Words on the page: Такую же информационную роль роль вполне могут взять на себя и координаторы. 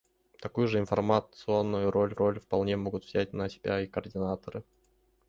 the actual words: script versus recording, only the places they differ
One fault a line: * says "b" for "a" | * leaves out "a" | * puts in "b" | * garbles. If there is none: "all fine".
all fine